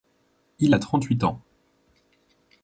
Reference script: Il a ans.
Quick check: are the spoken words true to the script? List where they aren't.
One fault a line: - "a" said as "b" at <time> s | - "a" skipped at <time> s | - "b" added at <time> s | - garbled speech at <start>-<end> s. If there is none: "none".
- "trente huit" added at 0.8 s